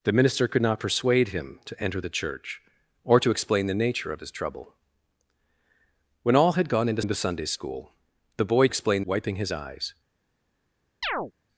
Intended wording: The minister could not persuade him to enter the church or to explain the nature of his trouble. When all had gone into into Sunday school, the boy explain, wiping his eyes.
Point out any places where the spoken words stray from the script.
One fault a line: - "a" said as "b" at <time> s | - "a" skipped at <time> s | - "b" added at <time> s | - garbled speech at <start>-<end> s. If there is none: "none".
none